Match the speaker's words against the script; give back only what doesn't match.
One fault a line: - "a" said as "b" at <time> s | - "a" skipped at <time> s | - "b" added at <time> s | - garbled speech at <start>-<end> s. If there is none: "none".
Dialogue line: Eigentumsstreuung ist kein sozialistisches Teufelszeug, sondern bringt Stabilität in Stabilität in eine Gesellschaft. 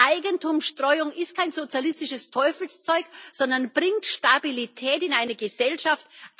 - "Stabilität in" skipped at 5.1 s